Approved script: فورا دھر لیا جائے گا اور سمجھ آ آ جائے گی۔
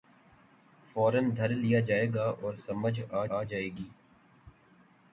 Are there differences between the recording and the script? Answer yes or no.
no